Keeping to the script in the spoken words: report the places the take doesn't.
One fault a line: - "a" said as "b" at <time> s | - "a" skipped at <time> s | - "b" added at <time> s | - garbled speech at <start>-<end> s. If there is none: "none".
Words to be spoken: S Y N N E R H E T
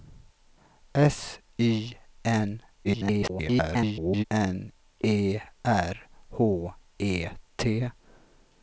- garbled speech at 2.8-4.2 s